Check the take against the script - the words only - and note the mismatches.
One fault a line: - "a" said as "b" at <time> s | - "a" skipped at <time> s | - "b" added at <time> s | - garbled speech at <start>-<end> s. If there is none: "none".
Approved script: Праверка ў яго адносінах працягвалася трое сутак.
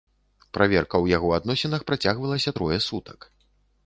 none